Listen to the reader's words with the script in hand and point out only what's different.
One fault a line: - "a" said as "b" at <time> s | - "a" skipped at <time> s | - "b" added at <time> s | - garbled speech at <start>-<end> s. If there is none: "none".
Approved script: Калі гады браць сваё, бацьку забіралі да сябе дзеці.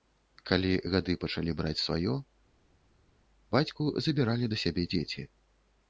- "пачалі" added at 1.2 s